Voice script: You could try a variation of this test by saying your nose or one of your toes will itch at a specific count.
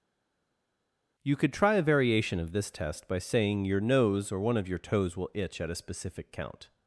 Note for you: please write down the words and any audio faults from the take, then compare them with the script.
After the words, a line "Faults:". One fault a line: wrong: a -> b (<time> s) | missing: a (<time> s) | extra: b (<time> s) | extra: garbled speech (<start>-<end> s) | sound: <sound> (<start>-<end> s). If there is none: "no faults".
You could try a variation of this test by saying your nose or one of your toes will itch at a specific count.
Faults:
no faults